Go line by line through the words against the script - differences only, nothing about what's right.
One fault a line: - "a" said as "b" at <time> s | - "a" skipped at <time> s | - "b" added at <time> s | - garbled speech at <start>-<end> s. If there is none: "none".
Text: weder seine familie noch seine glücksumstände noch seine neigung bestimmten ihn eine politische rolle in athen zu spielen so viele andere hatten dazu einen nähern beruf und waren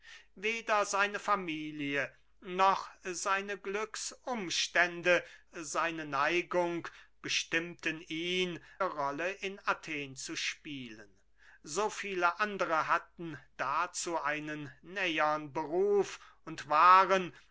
- "noch" skipped at 5.2 s
- "eine politische" skipped at 8.6 s